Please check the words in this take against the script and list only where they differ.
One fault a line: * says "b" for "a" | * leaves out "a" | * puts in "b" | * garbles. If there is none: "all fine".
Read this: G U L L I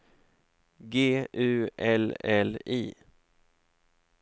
all fine